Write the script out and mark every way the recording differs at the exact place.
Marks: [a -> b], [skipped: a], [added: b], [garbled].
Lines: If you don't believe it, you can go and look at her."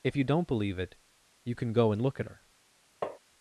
If you don't believe it, you can go and look at her."